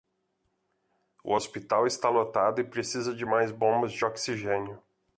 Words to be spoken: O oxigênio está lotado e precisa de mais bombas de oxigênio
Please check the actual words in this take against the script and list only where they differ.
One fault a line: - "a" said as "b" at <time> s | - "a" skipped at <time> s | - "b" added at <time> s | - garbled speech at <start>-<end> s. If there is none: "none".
- "oxigênio" said as "hospital" at 1.3 s